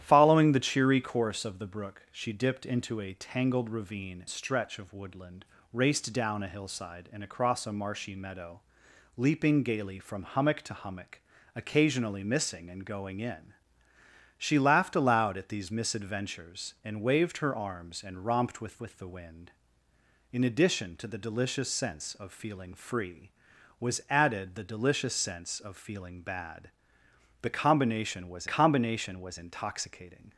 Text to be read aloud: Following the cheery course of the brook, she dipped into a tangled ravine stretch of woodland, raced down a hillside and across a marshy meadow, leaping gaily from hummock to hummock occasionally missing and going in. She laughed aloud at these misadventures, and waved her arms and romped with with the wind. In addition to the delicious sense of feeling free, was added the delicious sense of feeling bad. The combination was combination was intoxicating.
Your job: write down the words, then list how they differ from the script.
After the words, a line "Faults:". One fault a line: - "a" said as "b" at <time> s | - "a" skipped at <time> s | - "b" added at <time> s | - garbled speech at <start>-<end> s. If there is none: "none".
Following the cheery course of the brook, she dipped into a tangled ravine stretch of woodland, raced down a hillside and across a marshy meadow, leaping gaily from hummock to hummock occasionally missing and going in. She laughed aloud at these misadventures, and waved her arms and romped with with the wind. In addition to the delicious sense of feeling free, was added the delicious sense of feeling bad. The combination was combination was intoxicating.
Faults:
none